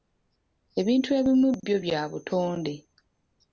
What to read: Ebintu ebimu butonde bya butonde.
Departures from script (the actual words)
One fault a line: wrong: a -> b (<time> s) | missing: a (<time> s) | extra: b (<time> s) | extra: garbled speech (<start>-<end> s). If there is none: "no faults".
wrong: butonde -> byo (1.6 s)